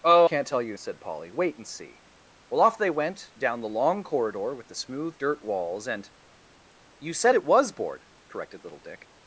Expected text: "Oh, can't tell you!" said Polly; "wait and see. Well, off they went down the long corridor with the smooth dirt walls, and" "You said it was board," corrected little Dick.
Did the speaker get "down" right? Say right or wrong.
right